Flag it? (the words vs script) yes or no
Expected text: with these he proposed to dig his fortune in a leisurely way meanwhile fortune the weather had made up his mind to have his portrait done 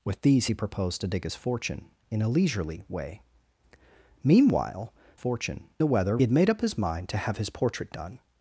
no